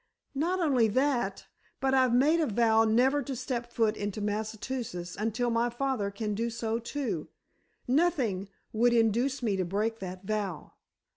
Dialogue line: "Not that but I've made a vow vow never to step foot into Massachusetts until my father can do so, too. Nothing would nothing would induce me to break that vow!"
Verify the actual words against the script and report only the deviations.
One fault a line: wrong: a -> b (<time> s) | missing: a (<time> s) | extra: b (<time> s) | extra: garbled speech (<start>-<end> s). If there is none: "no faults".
extra: only (0.6 s)
missing: vow (2.9 s)
missing: nothing would (8.9 s)